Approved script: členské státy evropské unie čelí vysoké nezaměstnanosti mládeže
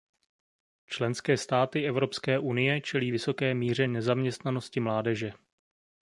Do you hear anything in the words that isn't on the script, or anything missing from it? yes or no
yes